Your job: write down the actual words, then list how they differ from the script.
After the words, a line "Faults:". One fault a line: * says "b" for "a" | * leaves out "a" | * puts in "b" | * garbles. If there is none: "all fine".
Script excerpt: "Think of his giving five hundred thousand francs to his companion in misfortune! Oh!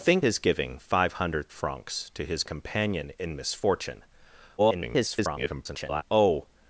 "Think his giving five hundred francs to his companion in misfortune! [garbled] Oh!
Faults:
* leaves out "of"
* leaves out "thousand"
* garbles